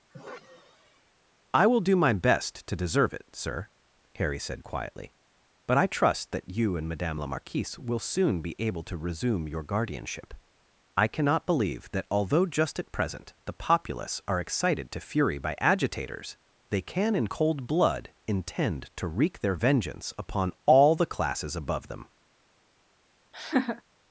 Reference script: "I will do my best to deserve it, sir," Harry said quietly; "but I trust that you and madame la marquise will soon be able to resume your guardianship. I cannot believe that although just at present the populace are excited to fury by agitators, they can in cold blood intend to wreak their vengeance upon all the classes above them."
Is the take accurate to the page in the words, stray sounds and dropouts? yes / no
no